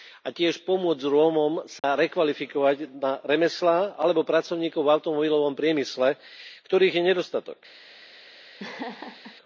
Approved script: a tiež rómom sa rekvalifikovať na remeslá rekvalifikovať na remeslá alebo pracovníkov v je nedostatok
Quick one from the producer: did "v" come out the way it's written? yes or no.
no